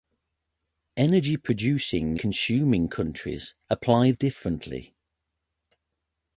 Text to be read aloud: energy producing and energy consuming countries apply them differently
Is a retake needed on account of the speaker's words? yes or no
yes